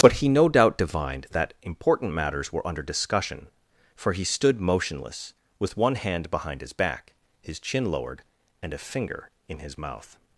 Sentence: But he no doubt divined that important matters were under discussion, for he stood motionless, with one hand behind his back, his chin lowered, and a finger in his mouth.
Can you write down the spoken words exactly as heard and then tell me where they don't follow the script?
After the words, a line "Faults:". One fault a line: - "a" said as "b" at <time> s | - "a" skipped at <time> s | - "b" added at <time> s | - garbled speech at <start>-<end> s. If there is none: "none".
But he no doubt divined that important matters were under discussion, for he stood motionless, with one hand behind his back, his chin lowered, and a finger in his mouth.
Faults:
none